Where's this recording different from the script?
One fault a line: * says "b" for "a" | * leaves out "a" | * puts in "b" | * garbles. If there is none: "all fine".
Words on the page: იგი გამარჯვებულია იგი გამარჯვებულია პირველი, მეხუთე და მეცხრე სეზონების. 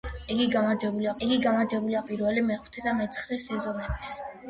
all fine